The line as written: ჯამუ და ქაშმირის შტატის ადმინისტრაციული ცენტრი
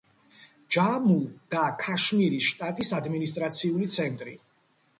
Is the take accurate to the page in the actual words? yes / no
yes